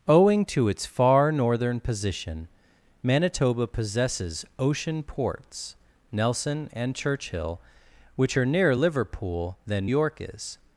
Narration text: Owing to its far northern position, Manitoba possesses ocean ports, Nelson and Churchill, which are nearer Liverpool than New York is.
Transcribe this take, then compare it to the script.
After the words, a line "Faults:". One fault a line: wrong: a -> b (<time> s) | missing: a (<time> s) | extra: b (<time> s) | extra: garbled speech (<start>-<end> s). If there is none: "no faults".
Owing to its far northern position, Manitoba possesses ocean ports, Nelson and Churchill, which are nearer Liverpool than York is.
Faults:
missing: New (9.9 s)